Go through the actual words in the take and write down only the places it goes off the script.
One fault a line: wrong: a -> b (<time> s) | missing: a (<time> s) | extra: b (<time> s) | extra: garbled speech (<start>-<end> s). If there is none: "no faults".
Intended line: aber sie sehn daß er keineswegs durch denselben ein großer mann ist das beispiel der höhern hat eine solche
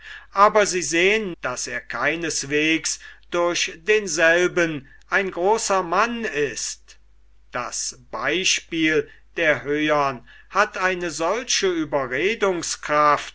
no faults